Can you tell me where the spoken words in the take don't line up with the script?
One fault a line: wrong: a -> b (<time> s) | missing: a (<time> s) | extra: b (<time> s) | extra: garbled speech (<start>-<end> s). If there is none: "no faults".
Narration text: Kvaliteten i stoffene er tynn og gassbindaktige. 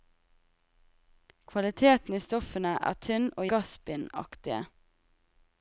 no faults